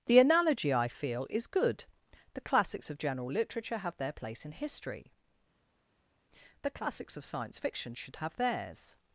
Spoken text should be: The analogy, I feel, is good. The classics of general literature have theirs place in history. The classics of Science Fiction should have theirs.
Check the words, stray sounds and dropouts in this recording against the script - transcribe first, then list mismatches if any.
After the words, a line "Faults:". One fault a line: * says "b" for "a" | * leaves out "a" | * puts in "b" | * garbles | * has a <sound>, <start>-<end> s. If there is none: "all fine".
The analogy, I feel, is good. The classics of general literature have their place in history. The classics of Science Fiction should have theirs.
Faults:
* says "their" for "theirs"